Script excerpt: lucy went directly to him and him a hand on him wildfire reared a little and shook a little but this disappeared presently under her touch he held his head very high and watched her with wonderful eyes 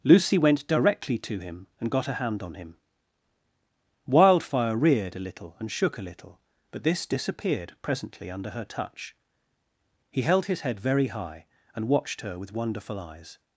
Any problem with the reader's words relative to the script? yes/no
yes